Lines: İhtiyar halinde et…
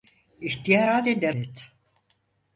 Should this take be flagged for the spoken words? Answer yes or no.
no